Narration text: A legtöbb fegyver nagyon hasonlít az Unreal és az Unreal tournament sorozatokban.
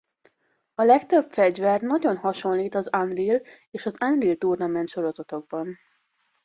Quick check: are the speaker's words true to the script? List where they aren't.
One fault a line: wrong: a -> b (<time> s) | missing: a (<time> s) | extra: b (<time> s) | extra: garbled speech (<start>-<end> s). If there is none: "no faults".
no faults